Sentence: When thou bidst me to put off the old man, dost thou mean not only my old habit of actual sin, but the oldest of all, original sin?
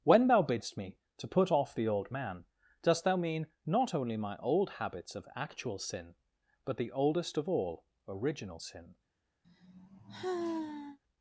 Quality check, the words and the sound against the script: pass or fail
fail